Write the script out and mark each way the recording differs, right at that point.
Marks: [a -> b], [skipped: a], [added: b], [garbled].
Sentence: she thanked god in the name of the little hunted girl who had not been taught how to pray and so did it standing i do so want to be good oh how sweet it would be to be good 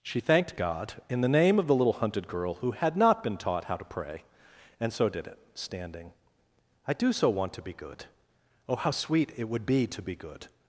she thanked god in the name of the little hunted girl who had not been taught how to pray and so did it standing i do so want to be good oh how sweet it would be to be good